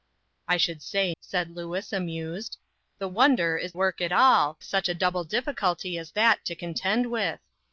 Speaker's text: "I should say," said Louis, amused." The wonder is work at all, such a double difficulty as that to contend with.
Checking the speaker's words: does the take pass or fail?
pass